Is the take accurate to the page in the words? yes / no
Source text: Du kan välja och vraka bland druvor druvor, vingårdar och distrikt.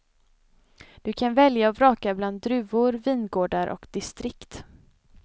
no